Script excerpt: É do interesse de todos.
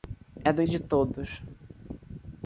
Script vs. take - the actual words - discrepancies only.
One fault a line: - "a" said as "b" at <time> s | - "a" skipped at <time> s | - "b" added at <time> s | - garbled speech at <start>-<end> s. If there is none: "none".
- "interesse" skipped at 0.6 s